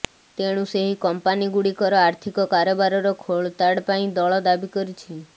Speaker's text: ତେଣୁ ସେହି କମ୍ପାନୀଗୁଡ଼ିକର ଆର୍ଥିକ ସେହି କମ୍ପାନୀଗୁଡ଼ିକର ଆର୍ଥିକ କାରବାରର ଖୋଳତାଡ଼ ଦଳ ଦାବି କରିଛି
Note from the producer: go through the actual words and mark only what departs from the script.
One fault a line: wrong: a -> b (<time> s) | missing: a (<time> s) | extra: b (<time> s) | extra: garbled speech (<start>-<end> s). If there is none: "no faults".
missing: ସେହି କମ୍ପାନୀଗୁଡ଼ିକର ଆର୍ଥିକ (2.5 s)
extra: ପାଇଁ (3.9 s)